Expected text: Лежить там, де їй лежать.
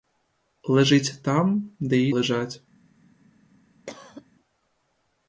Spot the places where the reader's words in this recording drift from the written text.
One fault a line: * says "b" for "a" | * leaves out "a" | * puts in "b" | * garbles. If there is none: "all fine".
all fine